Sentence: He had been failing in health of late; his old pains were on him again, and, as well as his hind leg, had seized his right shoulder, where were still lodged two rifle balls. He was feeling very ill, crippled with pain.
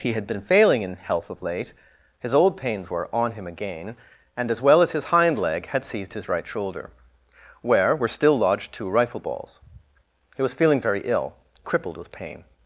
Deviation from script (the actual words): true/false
false